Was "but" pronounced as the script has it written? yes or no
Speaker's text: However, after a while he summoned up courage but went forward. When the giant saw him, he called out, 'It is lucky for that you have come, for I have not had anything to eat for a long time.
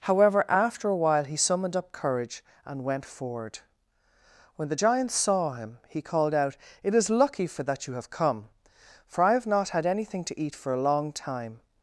no